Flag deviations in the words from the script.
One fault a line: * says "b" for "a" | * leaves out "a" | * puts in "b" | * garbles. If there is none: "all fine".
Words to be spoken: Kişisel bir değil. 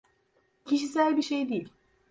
* puts in "şey"